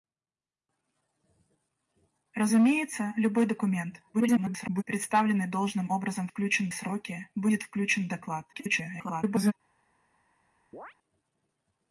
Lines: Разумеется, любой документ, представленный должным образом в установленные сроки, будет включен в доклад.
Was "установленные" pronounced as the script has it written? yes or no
no